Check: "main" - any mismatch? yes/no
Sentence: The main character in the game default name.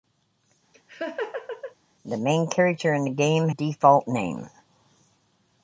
no